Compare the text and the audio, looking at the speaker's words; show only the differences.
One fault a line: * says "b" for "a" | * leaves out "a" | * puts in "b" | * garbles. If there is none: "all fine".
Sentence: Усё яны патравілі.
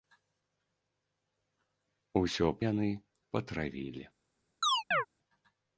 all fine